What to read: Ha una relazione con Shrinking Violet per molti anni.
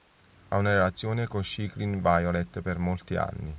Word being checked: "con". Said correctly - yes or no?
yes